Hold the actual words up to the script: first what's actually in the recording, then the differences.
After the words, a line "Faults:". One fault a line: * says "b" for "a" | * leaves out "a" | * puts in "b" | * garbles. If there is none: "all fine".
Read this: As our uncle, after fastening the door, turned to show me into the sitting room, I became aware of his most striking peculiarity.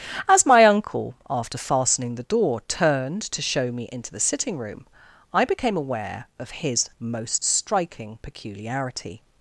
As my uncle, after fastening the door, turned to show me into the sitting room, I became aware of his most striking peculiarity.
Faults:
* says "my" for "our"